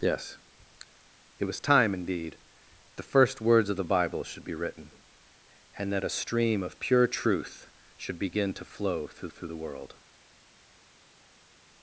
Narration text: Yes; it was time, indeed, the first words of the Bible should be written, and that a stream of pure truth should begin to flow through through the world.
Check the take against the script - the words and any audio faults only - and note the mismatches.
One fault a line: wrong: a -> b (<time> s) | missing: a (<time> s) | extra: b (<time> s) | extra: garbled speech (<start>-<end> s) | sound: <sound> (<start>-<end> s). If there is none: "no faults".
no faults